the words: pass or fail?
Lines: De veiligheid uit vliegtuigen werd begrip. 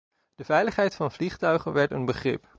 fail